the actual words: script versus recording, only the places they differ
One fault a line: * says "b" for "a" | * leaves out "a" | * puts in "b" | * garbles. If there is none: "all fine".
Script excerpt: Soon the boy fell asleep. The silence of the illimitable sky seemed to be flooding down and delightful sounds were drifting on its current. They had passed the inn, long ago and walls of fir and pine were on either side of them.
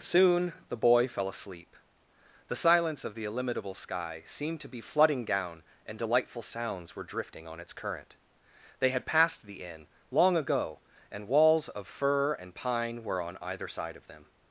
all fine